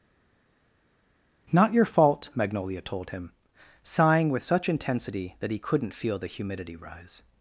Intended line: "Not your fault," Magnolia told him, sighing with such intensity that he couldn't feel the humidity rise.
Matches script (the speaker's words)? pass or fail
pass